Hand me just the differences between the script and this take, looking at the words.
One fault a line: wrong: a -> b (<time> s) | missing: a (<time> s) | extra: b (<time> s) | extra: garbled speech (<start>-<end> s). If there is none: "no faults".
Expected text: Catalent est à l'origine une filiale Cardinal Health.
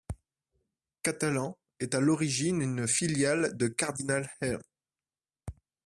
extra: de (3.5 s)